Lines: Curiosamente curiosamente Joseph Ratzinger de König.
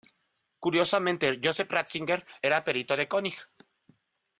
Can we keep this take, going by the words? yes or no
no